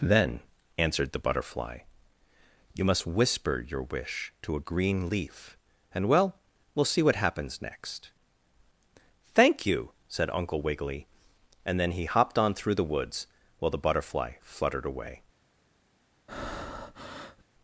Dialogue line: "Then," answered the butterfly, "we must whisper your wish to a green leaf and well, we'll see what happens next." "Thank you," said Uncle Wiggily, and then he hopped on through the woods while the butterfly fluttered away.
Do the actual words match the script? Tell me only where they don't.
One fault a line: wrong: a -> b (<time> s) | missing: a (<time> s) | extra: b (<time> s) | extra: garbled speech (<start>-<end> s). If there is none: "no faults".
wrong: we -> you (2.7 s)